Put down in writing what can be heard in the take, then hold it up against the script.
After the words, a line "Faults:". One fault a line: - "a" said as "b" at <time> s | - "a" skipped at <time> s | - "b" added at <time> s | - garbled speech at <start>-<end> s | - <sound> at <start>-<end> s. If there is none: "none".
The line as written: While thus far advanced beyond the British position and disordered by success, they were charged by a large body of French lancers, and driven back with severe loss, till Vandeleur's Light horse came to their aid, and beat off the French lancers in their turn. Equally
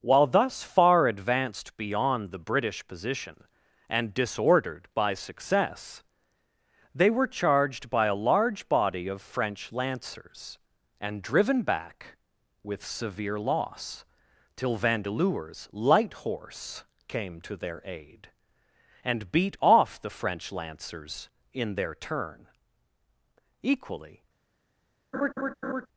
While thus far advanced beyond the British position and disordered by success, they were charged by a large body of French lancers, and driven back with severe loss, till Vandeleur's Light horse came to their aid, and beat off the French lancers in their turn. Equally
Faults:
- laugh at 25.1-25.9 s